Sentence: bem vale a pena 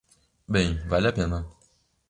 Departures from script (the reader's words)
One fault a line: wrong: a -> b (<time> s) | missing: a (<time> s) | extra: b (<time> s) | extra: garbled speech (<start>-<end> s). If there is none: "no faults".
no faults